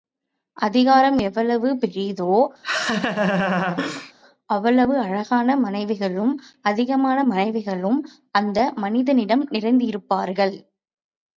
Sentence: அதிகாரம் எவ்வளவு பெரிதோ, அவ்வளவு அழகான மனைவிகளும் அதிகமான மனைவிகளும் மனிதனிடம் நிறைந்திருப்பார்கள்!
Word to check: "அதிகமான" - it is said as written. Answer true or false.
true